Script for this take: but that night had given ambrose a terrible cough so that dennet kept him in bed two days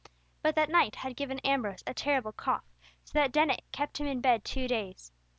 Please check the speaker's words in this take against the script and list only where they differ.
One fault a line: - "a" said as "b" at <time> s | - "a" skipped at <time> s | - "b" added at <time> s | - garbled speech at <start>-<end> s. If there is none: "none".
none